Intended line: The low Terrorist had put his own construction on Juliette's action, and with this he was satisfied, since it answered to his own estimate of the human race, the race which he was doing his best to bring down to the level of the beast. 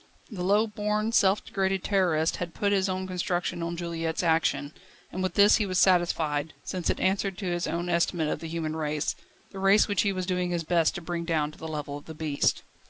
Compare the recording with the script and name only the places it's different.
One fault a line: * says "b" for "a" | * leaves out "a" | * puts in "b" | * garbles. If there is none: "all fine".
* puts in "born self degraded"